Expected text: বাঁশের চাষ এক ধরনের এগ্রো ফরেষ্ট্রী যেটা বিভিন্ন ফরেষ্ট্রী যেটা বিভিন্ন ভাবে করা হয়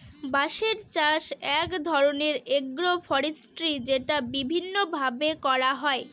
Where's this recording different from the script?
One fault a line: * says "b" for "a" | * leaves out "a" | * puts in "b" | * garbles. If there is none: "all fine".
* leaves out "ফরেষ্ট্রী যেটা বিভিন্ন"